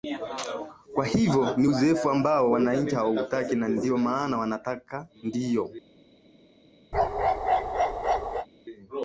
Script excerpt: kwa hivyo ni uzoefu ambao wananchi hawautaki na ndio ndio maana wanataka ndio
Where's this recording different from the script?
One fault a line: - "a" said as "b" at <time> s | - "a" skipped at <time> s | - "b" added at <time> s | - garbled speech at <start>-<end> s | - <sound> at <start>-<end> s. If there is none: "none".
- "ndio" skipped at 4.0 s
- bark at 6.9-8.5 s